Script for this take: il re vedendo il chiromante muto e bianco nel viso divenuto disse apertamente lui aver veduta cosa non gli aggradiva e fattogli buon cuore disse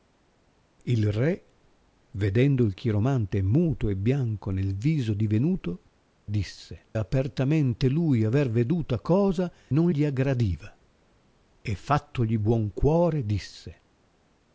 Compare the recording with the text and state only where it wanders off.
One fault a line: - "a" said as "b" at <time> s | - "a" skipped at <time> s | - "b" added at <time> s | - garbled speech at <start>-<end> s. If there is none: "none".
none